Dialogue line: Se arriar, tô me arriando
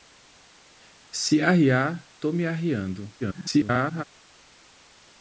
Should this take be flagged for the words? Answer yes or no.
yes